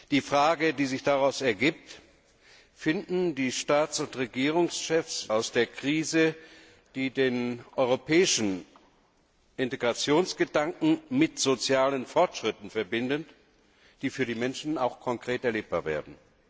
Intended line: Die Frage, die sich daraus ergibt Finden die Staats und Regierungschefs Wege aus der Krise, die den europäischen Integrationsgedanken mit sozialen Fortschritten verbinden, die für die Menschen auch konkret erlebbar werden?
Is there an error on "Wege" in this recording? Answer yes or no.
yes